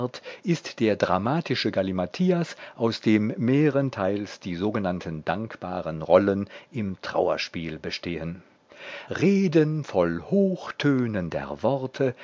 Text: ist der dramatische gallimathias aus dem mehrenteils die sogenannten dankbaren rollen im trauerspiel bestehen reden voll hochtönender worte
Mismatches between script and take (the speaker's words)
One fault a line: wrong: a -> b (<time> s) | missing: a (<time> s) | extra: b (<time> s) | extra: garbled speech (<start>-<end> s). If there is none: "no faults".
no faults